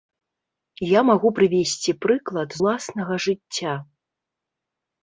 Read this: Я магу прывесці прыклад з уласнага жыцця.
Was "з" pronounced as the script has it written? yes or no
no